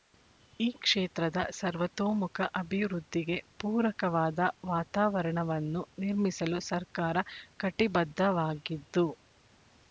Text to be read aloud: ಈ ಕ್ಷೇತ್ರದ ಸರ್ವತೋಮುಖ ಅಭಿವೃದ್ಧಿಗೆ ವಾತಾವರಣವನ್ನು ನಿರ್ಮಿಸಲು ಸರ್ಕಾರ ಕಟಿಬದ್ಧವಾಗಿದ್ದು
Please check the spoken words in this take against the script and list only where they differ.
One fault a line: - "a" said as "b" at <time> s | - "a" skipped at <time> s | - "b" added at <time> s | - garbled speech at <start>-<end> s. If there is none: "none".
- "ಪೂರಕವಾದ" added at 3.6 s